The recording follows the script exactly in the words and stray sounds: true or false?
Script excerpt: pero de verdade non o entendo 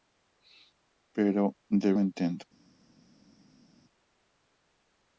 false